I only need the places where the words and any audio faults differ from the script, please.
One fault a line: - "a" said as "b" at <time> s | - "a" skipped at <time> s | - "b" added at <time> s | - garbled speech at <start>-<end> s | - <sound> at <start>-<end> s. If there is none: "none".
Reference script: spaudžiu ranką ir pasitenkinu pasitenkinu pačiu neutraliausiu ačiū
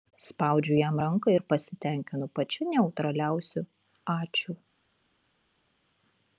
- "jam" added at 0.8 s
- "pasitenkinu" skipped at 2.3 s